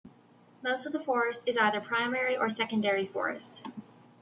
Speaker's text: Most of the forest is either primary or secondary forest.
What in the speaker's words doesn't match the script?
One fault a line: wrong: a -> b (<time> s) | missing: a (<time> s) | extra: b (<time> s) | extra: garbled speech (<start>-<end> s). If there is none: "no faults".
no faults